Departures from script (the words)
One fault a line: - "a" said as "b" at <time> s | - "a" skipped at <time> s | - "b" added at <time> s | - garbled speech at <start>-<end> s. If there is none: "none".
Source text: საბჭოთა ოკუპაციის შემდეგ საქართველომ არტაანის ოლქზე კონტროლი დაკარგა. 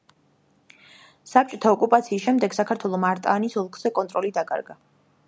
none